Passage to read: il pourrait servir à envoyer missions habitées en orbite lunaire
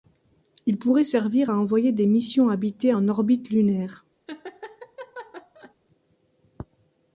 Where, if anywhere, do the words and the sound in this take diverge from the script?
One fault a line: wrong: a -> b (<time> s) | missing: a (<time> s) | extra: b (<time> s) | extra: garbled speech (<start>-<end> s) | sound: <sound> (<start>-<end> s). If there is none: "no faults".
extra: des (1.9 s)
sound: laugh (4.3-5.7 s)